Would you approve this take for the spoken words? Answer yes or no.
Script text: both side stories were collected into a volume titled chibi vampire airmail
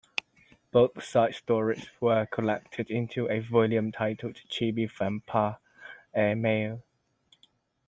yes